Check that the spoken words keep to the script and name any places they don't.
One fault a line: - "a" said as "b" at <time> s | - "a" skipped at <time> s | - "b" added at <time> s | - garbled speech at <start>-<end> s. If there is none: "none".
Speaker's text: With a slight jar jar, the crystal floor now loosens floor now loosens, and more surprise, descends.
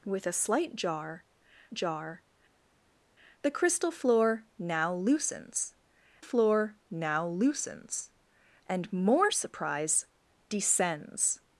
none